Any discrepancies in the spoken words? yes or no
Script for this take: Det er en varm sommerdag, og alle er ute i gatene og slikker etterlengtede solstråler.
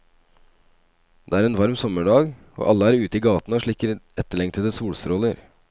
no